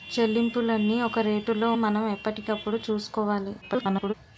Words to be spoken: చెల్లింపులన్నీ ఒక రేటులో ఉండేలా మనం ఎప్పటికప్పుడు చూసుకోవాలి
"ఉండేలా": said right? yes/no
no